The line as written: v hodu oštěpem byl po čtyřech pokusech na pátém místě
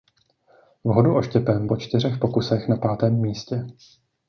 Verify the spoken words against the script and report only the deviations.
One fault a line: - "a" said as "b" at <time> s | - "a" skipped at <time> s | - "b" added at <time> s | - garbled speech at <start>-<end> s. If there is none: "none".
- "byl" skipped at 1.7 s